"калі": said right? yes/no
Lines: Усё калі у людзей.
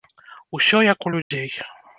no